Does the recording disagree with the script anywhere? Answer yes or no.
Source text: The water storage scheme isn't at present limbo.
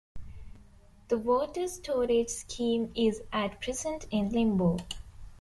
yes